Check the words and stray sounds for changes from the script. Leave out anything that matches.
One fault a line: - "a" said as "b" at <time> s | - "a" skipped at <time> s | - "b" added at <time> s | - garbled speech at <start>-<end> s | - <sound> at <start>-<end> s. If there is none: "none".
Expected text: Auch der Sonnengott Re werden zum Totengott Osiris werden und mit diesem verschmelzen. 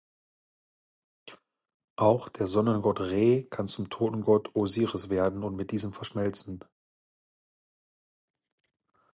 - "werden" said as "kann" at 3.4 s